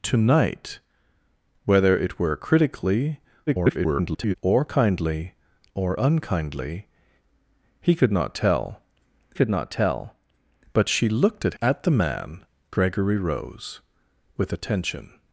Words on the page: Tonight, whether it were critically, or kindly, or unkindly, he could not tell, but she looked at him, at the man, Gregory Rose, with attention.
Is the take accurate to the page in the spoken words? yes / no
no